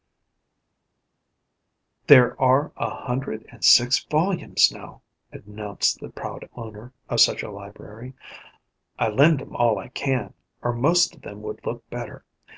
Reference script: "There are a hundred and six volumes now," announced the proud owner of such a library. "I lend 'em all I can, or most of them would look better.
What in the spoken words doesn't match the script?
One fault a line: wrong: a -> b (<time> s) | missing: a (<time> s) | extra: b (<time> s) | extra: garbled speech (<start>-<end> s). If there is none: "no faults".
no faults